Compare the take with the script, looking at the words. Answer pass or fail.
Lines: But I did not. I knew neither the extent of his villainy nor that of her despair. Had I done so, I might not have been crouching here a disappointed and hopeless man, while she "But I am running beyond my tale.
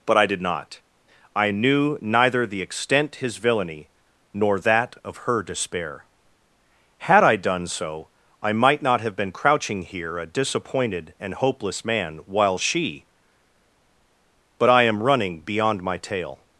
fail